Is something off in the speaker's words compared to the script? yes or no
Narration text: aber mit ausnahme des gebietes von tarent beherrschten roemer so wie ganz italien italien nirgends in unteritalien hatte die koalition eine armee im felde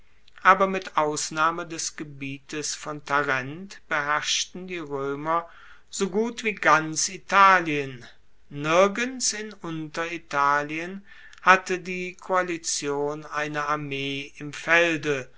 yes